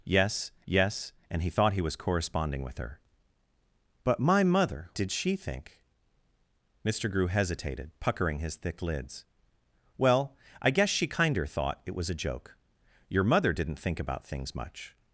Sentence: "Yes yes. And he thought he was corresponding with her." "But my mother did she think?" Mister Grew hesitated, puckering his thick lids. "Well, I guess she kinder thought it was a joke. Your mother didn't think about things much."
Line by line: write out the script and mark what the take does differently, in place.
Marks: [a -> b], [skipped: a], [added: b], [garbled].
"Yes yes. And he thought he was corresponding with her." "But my mother did she think?" Mister Grew hesitated, puckering his thick lids. "Well, I guess she kinder thought it was a joke. Your mother didn't think about things much."